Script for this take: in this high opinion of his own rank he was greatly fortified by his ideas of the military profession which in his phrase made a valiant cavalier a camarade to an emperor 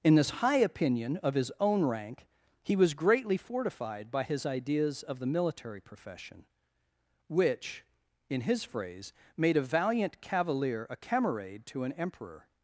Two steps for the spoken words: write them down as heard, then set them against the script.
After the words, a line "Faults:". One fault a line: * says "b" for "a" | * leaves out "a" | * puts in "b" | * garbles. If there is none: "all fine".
in this high opinion of his own rank he was greatly fortified by his ideas of the military profession which in his phrase made a valiant cavalier a camarade to an emperor
Faults:
all fine